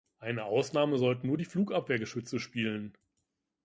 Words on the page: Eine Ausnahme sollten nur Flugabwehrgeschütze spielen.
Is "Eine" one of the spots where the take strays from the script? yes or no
no